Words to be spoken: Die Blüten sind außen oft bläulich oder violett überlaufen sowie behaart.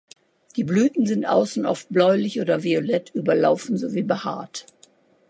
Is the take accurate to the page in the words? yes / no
yes